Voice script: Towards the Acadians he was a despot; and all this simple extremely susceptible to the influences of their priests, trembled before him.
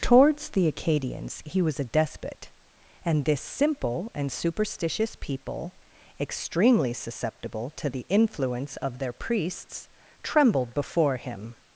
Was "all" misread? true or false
true